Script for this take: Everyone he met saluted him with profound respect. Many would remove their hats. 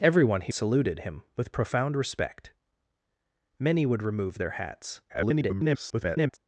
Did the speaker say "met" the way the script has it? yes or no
no